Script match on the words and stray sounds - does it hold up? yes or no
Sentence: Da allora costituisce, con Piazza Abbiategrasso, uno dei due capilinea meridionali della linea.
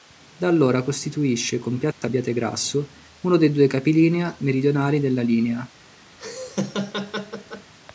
no